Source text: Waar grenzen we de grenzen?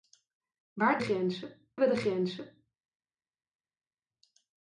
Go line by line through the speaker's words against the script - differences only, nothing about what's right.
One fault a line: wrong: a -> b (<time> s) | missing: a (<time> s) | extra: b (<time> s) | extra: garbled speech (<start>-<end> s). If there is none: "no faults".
no faults